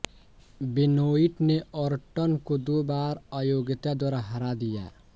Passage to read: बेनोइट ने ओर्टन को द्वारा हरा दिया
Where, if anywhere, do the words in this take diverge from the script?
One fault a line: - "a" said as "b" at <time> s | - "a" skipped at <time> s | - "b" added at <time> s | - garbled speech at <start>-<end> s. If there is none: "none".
- "दो बार अयोग्यता" added at 2.6 s